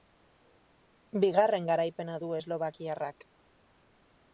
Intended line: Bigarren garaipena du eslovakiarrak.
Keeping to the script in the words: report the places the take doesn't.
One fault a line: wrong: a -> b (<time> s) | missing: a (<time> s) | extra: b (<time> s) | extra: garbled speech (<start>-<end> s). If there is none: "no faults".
no faults